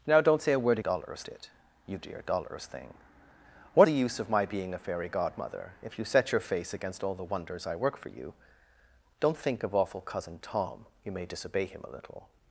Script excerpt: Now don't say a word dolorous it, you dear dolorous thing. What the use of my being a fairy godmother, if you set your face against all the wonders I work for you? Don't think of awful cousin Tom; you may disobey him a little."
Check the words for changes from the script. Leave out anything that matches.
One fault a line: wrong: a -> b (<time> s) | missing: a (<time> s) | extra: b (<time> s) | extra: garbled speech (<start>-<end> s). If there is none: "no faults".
no faults